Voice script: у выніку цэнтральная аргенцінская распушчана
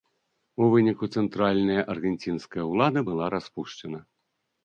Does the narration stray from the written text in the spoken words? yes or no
yes